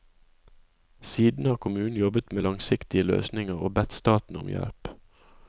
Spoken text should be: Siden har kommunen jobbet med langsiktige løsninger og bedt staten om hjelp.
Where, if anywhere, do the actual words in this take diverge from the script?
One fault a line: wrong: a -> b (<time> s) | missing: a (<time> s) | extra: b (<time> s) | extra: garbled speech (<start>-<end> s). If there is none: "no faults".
no faults